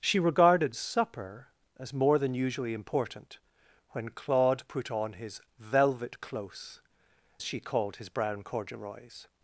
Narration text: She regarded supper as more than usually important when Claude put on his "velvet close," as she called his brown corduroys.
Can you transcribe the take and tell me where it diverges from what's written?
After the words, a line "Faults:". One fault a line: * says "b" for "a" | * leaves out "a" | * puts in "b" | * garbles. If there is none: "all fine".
She regarded supper as more than usually important when Claude put on his "velvet close," she called his brown corduroys.
Faults:
* leaves out "as"